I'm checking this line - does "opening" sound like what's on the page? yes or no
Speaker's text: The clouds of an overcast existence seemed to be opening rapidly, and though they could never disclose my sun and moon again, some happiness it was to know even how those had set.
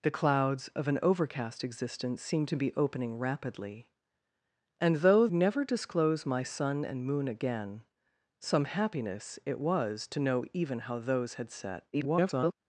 yes